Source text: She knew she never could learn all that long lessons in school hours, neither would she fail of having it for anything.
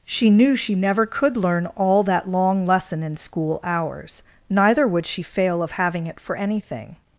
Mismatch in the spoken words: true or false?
true